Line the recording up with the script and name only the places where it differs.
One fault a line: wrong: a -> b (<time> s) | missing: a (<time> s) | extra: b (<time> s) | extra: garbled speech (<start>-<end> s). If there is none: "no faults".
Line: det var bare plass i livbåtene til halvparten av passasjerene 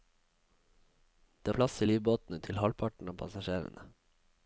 missing: var bare (1.5 s)